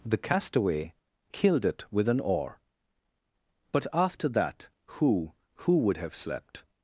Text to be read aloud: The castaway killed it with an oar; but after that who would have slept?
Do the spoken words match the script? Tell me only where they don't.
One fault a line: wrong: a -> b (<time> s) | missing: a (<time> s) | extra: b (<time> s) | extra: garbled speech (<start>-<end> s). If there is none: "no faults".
extra: who (5.7 s)